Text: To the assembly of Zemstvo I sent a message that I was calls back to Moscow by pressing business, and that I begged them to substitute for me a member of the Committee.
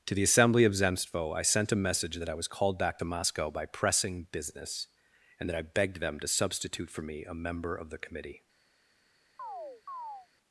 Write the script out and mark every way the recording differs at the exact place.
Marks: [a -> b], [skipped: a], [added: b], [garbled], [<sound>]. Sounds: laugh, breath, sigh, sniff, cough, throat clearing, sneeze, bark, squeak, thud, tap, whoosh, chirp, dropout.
To the assembly of Zemstvo I sent a message that I was [calls -> called] back to Moscow by pressing business, and that I begged them to substitute for me a member of the Committee. [chirp]